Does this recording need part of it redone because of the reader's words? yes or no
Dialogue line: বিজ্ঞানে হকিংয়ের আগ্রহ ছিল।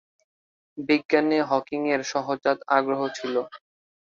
yes